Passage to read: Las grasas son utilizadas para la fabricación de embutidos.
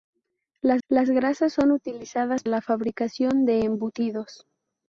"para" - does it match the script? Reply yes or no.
no